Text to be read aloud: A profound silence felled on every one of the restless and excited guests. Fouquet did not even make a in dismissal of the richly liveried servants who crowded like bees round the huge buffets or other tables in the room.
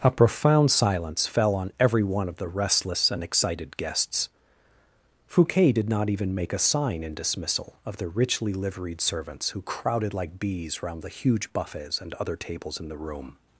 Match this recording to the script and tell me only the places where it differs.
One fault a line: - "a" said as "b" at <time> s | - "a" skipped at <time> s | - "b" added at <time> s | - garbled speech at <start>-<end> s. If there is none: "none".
- "felled" said as "fell" at 1.3 s
- "sign" added at 6.6 s
- "or" said as "and" at 12.0 s